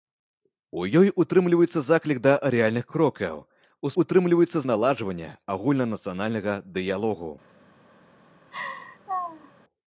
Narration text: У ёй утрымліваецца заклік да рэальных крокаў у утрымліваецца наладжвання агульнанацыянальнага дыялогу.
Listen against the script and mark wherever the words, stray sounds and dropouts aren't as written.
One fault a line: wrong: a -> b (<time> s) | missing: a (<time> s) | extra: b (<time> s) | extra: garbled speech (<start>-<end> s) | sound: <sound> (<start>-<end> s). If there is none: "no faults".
sound: laugh (8.5-9.5 s)